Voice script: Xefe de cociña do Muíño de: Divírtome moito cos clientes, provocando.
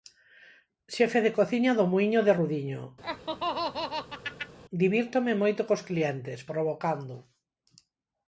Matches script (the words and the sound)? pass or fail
fail